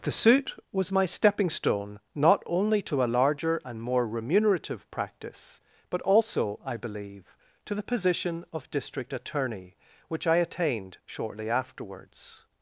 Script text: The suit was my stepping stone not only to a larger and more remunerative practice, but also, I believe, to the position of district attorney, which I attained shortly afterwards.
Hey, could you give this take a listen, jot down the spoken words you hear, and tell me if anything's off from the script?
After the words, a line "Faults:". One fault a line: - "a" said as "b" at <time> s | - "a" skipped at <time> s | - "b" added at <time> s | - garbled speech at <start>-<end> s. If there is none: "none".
The suit was my stepping stone not only to a larger and more remunerative practice, but also, I believe, to the position of district attorney, which I attained shortly afterwards.
Faults:
none